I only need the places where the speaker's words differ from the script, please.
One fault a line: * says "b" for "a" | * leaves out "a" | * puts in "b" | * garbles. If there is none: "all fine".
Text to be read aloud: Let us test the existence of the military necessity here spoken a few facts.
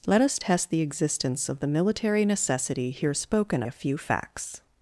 all fine